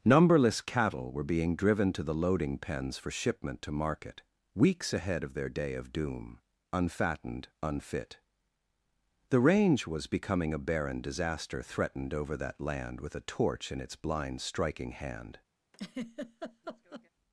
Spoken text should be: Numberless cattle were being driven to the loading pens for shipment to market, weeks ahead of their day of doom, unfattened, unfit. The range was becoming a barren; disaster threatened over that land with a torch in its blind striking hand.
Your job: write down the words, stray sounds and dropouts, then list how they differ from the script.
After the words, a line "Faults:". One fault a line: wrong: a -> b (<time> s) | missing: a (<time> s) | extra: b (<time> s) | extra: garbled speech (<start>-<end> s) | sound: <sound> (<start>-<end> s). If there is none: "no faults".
Numberless cattle were being driven to the loading pens for shipment to market, weeks ahead of their day of doom, unfattened, unfit. The range was becoming a barren; disaster threatened over that land with a torch in its blind striking hand.
Faults:
sound: laugh (15.7-17.1 s)